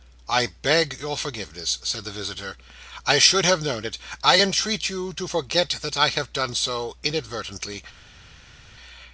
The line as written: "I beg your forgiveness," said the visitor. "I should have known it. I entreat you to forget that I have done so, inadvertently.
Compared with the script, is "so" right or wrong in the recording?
right